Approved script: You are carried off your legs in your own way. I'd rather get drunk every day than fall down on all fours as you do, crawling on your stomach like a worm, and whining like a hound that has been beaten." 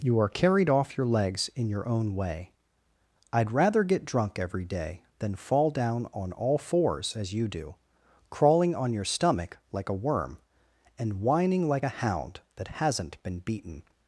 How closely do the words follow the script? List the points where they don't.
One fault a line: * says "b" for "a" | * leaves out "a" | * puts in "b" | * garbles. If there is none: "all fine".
* says "hasn't" for "has"